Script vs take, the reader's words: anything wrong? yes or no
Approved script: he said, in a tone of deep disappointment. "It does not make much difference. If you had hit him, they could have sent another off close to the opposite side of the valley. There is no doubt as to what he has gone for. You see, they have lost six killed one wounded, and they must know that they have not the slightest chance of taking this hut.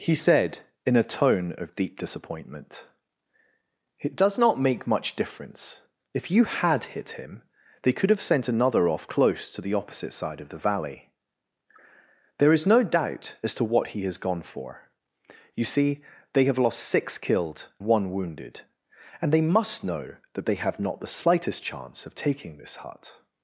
no